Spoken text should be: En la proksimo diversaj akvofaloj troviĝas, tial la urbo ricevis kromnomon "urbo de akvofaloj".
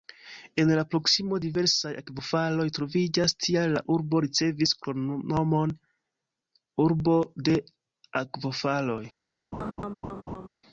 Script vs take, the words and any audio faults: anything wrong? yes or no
yes